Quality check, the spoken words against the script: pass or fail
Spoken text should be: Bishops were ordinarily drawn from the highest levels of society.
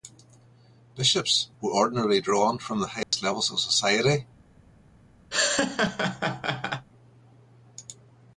pass